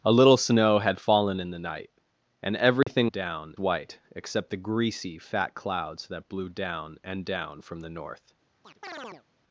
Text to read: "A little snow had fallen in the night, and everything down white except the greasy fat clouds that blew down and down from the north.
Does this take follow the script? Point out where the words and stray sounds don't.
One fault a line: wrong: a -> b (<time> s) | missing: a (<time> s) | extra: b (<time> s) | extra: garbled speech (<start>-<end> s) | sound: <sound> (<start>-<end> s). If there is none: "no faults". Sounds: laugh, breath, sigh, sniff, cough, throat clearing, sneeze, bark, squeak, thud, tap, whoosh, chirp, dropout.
sound: dropout (2.8-2.9 s)
sound: chirp (8.6-9.2 s)